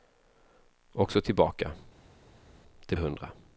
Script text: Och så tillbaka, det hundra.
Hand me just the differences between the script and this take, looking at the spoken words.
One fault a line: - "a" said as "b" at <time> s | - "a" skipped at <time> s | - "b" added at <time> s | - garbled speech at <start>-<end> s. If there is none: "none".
none